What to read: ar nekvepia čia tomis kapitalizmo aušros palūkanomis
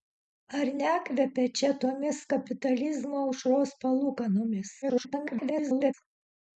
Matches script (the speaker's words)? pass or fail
fail